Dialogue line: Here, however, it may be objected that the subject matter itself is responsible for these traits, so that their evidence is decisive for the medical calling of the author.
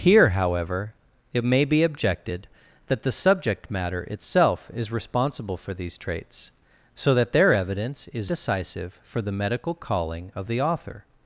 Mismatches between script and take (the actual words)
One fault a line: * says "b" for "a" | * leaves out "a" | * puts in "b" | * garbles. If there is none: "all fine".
all fine